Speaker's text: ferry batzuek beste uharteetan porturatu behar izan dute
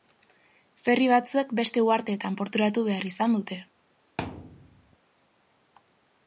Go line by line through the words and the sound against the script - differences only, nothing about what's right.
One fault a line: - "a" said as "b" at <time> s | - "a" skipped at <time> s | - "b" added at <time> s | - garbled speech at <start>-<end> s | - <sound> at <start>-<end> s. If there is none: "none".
- thud at 4.2-5.0 s